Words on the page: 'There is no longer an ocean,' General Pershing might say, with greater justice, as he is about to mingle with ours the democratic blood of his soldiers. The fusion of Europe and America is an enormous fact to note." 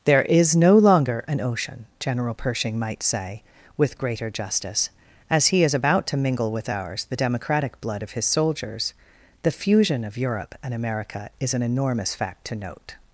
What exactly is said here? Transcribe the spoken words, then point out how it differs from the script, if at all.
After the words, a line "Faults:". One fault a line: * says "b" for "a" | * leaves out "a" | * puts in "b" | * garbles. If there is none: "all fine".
'There is no longer an ocean,' General Pershing might say, with greater justice, as he is about to mingle with ours the democratic blood of his soldiers. The fusion of Europe and America is an enormous fact to note."
Faults:
all fine